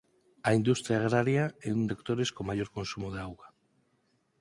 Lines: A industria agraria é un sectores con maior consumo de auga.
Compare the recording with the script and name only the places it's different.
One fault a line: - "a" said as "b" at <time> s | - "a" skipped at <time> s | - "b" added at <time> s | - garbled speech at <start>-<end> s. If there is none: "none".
none